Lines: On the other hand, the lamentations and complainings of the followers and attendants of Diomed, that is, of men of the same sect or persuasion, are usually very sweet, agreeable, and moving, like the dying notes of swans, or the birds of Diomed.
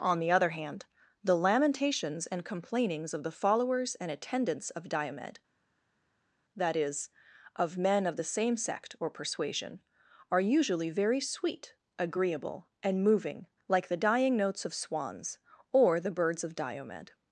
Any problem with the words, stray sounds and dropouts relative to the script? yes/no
no